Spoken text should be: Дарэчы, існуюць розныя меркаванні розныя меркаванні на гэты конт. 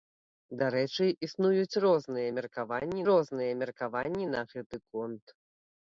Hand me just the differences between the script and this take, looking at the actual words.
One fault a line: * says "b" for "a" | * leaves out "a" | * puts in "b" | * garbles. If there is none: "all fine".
all fine